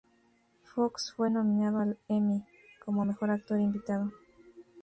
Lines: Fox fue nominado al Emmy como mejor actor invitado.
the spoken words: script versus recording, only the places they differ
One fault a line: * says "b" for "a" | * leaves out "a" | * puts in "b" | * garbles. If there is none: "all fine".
all fine